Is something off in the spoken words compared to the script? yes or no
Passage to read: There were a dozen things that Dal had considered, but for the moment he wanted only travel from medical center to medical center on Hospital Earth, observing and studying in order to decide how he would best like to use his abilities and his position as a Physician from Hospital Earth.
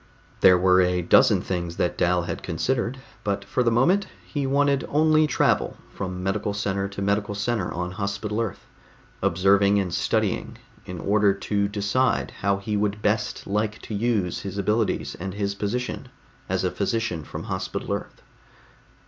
no